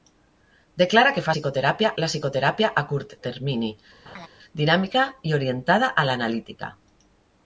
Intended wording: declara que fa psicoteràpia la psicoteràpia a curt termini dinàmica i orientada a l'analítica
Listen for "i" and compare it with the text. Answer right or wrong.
right